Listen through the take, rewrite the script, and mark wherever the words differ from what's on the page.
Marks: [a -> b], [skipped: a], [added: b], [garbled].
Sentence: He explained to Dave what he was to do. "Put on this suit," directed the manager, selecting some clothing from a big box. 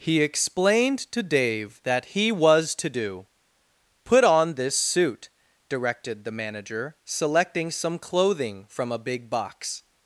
He explained to Dave [what -> that] he was to do. "Put on this suit," directed the manager, selecting some clothing from a big box.